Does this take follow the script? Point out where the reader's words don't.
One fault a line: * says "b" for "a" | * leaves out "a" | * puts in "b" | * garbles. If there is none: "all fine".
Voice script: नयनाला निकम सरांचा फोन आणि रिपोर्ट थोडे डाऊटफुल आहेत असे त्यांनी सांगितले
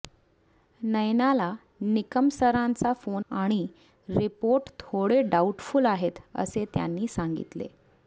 all fine